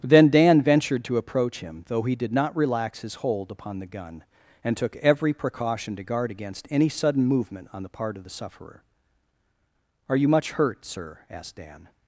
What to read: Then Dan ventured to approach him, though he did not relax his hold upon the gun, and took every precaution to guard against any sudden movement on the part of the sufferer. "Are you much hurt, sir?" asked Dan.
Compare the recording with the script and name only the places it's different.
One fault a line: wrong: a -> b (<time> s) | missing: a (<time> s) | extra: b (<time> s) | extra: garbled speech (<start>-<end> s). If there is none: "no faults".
no faults